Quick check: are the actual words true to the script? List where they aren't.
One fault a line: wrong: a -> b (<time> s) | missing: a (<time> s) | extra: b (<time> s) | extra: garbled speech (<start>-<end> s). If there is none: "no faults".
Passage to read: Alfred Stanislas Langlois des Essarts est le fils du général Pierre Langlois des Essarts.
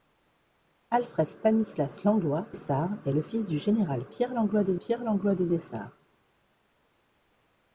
missing: des (2.5 s)
extra: Pierre Langlois des (4.8 s)